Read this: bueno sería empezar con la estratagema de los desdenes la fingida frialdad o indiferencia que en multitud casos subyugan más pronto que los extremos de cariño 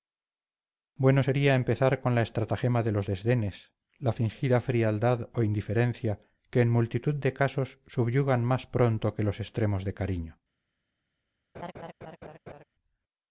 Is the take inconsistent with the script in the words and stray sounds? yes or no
yes